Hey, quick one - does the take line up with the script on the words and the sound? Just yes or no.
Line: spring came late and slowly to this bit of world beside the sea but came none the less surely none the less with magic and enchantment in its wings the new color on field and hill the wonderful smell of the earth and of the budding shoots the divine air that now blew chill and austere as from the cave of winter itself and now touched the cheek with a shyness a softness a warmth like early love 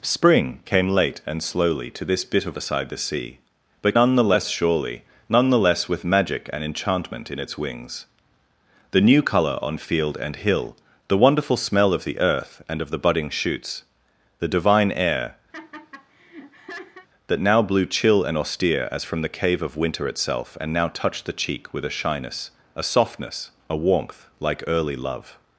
no